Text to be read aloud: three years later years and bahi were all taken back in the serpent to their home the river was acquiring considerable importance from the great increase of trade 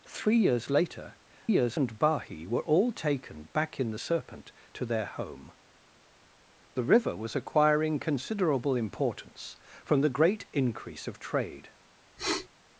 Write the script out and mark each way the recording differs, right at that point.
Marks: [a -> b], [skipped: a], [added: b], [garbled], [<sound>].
three years later years and bahi were all taken back in the serpent to their home the river was acquiring considerable importance from the great increase of trade [sniff]